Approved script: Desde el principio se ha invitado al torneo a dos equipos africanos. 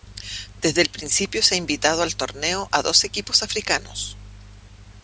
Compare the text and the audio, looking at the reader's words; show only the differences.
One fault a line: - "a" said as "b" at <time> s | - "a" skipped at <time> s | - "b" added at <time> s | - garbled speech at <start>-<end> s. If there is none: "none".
none